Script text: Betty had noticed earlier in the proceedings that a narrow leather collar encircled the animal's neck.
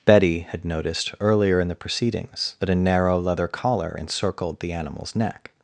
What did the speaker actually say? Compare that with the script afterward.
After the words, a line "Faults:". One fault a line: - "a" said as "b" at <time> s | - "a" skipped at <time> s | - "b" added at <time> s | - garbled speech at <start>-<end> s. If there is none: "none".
Betty had noticed earlier in the proceedings that a narrow leather collar encircled the animal's neck.
Faults:
none